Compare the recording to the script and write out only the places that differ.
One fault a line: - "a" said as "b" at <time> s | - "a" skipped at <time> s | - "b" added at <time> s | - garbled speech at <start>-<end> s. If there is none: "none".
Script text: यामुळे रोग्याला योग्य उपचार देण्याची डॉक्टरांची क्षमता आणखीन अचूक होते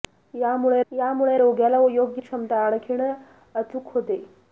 - "यामुळे" added at 0.9 s
- "उपचार देण्याची डॉक्टरांची" skipped at 2.2 s